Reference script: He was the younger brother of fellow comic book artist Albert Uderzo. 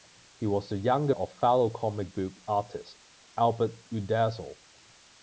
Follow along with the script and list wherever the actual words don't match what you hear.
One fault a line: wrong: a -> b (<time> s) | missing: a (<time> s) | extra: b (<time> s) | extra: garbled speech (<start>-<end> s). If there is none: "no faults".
missing: brother (1.1 s)